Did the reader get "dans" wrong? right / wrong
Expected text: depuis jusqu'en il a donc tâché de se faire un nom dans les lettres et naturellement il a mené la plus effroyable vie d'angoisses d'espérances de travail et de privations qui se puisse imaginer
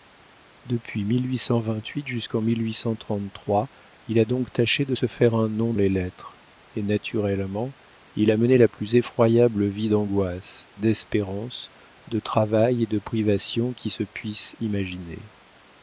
wrong